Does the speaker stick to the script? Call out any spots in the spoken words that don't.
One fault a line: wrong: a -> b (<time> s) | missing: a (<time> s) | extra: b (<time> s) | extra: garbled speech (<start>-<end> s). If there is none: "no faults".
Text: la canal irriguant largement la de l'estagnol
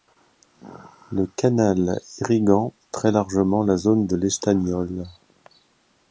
wrong: la -> le (1.1 s)
extra: très (2.9 s)
extra: zone (3.8 s)